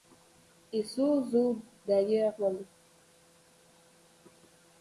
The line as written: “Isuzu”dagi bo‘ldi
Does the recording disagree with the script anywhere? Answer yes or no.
no